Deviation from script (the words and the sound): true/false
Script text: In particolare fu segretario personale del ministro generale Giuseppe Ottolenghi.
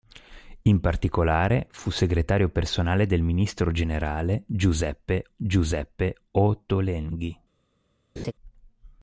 true